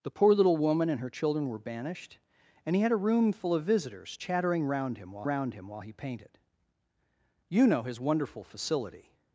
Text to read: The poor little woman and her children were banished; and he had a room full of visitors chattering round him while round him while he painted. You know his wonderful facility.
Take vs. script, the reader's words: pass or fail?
pass